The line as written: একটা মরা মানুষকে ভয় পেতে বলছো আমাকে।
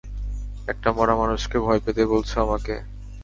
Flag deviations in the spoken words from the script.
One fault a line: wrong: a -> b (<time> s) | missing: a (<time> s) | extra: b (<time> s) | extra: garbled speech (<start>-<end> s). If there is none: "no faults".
no faults